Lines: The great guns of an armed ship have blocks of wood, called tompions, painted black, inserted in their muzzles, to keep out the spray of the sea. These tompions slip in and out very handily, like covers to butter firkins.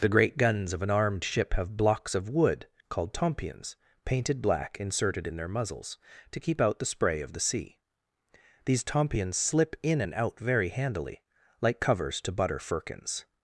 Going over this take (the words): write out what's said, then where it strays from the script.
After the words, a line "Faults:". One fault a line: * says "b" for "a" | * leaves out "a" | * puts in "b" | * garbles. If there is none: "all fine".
The great guns of an armed ship have blocks of wood, called tompions, painted black, inserted in their muzzles, to keep out the spray of the sea. These tompions slip in and out very handily, like covers to butter firkins.
Faults:
all fine